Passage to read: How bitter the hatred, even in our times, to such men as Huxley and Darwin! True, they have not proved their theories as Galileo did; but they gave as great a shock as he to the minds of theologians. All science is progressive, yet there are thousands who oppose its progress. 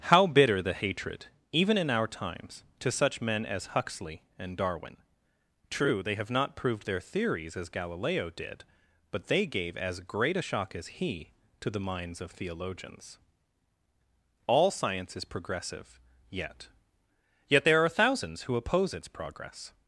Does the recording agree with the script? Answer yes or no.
no